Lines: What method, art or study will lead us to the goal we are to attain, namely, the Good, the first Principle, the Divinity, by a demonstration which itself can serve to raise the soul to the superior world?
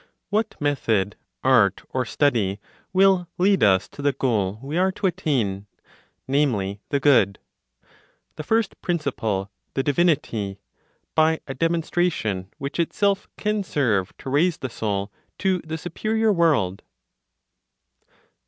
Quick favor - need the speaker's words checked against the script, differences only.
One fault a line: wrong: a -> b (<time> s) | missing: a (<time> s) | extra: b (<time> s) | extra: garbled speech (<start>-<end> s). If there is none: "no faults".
no faults